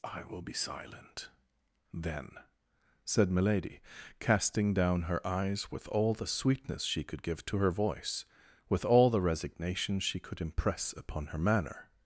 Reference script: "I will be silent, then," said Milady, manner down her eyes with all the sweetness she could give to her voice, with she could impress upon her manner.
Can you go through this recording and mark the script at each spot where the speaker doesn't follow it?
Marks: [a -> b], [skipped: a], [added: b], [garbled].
"I will be silent, then," said Milady, [manner -> casting] down her eyes with all the sweetness she could give to her voice, with [added: all the resignation] she could impress upon her manner.